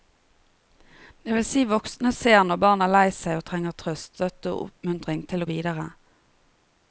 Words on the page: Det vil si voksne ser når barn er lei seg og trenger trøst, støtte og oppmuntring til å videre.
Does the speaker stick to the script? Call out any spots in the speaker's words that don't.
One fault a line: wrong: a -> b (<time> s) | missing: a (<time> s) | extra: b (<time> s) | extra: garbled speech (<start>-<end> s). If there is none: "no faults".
no faults